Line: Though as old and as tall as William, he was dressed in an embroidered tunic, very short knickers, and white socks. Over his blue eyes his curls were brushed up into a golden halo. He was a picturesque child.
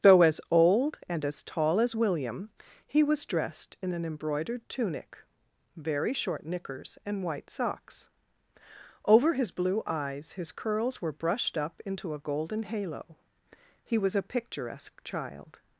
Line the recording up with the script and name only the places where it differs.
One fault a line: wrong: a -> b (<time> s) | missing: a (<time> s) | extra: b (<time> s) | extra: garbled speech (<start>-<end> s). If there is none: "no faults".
no faults